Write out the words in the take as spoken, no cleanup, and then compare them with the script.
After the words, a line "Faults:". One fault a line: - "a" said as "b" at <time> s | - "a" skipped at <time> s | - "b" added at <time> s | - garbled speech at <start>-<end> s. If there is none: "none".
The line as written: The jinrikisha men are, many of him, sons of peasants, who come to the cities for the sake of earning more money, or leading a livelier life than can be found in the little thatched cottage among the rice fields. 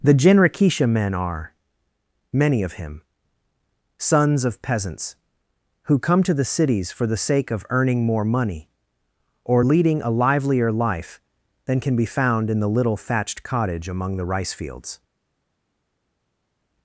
The jinrikisha men are, many of him, sons of peasants, who come to the cities for the sake of earning more money, or leading a livelier life than can be found in the little thatched cottage among the rice fields.
Faults:
none